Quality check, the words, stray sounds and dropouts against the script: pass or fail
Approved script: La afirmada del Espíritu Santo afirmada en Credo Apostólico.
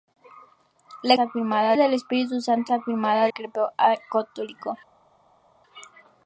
pass